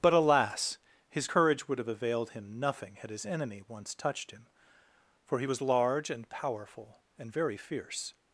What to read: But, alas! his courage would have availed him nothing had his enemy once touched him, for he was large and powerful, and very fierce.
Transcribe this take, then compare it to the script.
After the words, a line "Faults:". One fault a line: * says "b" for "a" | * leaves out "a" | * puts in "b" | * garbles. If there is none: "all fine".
But, alas! his courage would have availed him nothing had his enemy once touched him, for he was large and powerful, and very fierce.
Faults:
all fine